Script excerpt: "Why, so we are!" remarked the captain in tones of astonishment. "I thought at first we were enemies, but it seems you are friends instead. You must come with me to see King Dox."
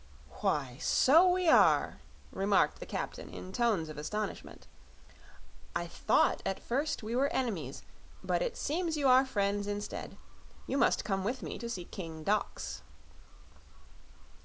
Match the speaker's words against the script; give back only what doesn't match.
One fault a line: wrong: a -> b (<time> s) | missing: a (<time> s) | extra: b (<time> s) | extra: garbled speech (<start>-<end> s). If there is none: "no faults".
no faults